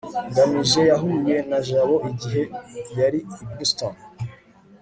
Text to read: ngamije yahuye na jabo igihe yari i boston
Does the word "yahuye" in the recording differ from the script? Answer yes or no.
no